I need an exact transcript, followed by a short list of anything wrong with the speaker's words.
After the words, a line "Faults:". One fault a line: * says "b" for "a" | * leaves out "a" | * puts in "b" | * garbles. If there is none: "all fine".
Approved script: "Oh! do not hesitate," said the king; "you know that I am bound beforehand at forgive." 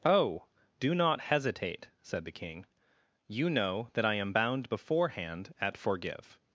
"Oh! do not hesitate," said the king; "you know that I am bound beforehand at forgive."
Faults:
all fine